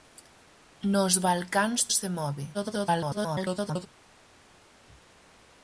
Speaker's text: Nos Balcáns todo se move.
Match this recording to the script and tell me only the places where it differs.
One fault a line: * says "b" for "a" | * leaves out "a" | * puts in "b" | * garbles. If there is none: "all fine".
* leaves out "todo"
* garbles